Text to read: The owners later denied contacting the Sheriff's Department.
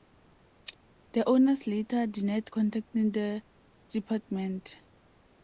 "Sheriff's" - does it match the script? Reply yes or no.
no